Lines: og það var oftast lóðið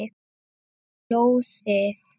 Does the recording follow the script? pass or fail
fail